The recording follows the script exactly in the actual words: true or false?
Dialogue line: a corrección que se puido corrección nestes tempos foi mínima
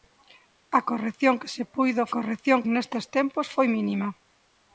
true